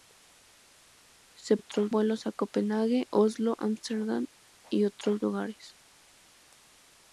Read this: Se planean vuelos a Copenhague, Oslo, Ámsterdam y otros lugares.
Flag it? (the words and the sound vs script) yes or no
yes